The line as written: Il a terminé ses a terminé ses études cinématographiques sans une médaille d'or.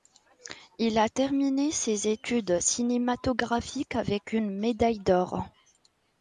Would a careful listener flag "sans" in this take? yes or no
yes